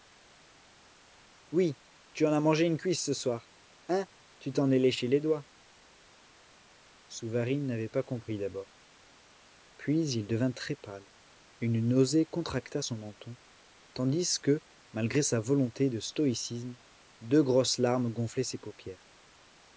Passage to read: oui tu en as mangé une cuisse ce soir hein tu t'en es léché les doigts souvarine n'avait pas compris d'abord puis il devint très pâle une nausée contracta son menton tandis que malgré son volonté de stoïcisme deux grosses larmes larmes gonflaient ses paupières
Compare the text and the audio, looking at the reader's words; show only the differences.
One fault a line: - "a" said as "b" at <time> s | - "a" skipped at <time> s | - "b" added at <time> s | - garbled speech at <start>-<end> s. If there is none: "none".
- "son" said as "sa" at 15.2 s
- "larmes" skipped at 18.1 s